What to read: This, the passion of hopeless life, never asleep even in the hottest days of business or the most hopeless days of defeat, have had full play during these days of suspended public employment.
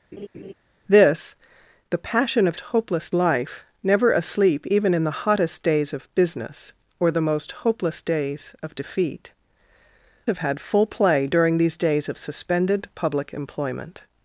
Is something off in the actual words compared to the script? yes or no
no